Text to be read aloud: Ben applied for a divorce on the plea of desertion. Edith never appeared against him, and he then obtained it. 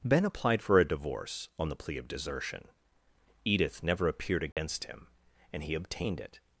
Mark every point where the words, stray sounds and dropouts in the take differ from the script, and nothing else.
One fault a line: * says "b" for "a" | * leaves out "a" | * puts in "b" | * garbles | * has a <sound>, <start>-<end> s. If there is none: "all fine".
* has a dropout, 4.5-4.6 s
* leaves out "then"